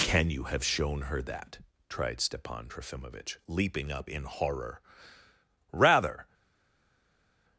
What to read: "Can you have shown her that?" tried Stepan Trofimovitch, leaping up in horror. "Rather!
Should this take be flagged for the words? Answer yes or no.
no